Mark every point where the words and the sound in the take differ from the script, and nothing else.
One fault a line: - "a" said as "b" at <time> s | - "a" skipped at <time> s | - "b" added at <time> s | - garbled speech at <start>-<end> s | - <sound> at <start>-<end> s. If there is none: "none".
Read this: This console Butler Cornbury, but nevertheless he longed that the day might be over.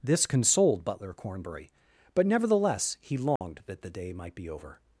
- "console" said as "consoled" at 0.2 s
- dropout at 3.4-3.4 s